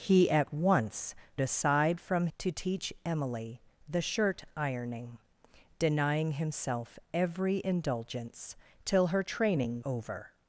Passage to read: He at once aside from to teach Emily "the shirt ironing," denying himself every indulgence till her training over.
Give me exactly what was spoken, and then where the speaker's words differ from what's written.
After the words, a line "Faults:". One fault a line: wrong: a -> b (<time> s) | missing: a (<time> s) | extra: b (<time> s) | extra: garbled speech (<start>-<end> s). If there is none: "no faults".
He at once aside from to teach Emily "the shirt ironing," denying himself every indulgence till her training over.
Faults:
no faults